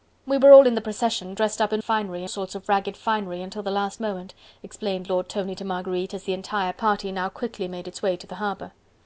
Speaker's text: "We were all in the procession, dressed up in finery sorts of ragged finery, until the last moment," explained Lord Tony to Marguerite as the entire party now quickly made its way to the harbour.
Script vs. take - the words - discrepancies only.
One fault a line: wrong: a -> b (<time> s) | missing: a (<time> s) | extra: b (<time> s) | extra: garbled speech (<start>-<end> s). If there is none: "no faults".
no faults